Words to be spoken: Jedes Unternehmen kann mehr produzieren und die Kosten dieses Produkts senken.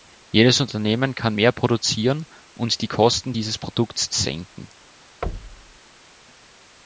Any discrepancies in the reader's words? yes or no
no